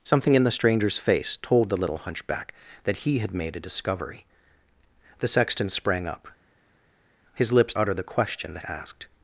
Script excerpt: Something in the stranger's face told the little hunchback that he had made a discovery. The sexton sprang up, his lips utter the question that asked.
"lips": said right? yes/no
yes